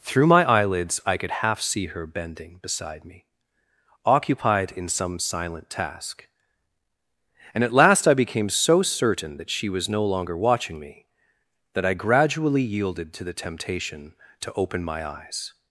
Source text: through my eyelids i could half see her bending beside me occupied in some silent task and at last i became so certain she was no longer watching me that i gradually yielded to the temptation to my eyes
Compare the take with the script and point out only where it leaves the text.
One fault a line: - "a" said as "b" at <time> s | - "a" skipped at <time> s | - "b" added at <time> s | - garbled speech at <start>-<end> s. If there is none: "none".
- "that" added at 9.4 s
- "open" added at 14.5 s